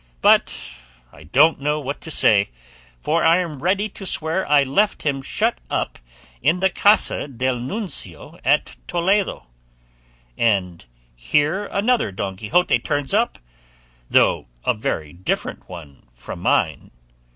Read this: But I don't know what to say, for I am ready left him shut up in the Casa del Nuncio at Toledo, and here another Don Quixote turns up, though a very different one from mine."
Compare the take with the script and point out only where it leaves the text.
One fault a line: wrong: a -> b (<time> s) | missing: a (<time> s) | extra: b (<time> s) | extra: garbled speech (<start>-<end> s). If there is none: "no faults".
extra: to swear I (3.9 s)